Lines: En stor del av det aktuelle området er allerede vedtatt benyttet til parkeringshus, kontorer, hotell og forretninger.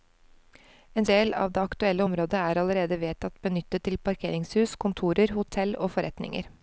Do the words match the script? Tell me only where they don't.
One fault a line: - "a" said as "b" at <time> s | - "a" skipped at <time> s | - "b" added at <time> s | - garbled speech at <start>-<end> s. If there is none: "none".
- "stor" skipped at 1.1 s